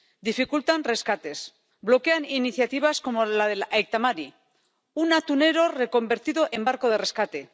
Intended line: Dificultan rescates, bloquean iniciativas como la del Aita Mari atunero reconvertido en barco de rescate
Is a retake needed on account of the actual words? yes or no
yes